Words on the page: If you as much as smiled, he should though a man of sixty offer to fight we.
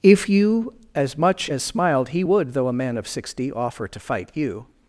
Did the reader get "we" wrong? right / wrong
wrong